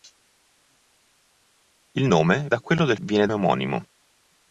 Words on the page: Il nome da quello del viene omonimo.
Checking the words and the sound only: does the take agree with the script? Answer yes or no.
yes